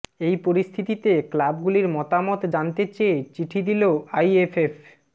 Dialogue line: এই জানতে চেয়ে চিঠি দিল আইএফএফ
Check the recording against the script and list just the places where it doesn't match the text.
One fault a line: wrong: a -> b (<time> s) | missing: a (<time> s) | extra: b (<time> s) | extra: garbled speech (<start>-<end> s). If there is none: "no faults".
extra: পরিস্থিতিতে ক্লাবগুলির মতামত (0.5 s)